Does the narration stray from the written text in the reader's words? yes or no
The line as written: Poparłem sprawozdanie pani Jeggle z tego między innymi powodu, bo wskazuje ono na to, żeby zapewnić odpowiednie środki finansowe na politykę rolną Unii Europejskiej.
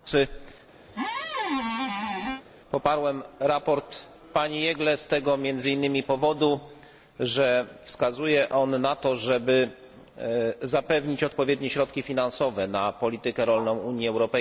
yes